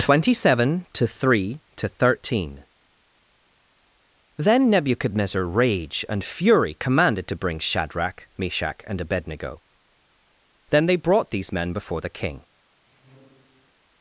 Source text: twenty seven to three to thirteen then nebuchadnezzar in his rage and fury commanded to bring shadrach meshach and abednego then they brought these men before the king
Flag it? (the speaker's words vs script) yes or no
yes